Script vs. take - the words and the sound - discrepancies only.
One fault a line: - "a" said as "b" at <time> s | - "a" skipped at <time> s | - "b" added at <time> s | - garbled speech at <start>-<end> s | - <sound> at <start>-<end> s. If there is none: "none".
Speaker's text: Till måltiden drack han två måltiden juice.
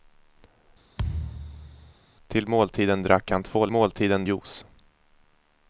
- thud at 1.0-1.9 s